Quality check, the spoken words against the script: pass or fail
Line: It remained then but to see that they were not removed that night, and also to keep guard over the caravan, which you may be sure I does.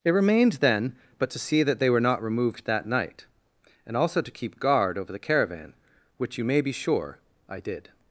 fail